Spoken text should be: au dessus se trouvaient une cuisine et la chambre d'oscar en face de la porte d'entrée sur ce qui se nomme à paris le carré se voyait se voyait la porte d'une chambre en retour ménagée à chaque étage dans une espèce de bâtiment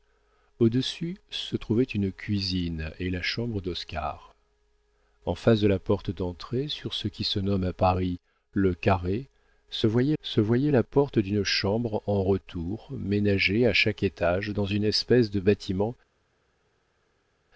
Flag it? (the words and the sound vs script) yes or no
no